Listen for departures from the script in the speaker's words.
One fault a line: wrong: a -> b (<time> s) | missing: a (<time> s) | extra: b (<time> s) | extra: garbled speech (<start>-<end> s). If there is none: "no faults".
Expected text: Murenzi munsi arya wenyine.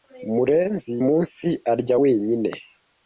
no faults